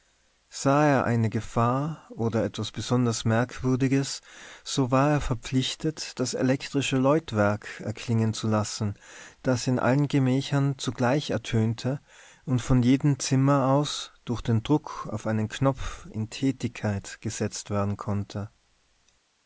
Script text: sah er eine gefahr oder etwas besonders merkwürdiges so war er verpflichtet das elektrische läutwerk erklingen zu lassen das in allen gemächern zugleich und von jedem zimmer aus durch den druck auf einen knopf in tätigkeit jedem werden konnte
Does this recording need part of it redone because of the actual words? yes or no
yes